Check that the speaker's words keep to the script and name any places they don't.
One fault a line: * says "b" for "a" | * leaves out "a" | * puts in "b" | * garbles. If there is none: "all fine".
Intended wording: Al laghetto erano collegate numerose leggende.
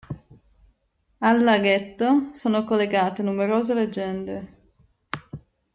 * says "sono" for "erano"